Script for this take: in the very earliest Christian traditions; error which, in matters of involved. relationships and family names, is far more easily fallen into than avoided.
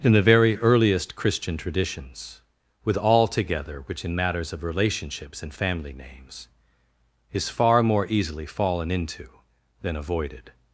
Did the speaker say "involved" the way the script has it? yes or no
no